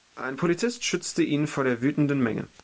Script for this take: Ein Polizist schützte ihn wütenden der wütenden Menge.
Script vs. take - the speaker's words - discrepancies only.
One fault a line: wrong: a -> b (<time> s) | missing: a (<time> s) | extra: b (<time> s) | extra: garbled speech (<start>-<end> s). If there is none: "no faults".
wrong: wütenden -> vor (1.5 s)